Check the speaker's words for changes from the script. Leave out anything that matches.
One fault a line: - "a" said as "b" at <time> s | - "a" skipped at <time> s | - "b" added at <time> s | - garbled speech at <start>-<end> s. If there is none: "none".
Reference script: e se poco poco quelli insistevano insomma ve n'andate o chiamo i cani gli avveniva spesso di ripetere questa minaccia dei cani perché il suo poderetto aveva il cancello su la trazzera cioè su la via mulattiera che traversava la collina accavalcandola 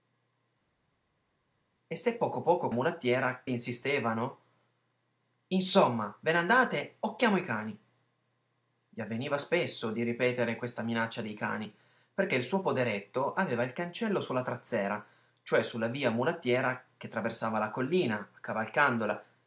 - "quelli" said as "mulattiera" at 2.7 s